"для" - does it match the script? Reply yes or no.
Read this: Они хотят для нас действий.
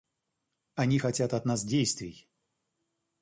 no